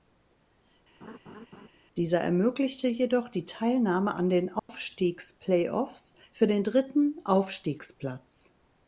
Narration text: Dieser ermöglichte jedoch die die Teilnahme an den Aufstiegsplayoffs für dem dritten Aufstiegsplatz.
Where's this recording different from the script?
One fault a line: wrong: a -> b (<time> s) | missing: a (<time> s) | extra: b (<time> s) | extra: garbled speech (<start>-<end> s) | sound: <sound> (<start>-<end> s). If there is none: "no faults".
sound: laugh (1.0-1.7 s)
missing: die (3.4 s)
sound: dropout (4.6-4.7 s)
wrong: dem -> den (6.5 s)